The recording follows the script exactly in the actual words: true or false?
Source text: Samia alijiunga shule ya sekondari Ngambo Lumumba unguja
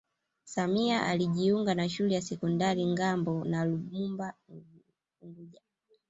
false